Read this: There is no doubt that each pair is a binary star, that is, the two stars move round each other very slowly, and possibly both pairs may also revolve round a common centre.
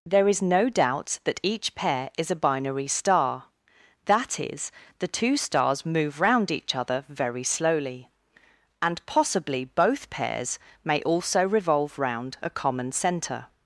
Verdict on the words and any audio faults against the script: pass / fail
pass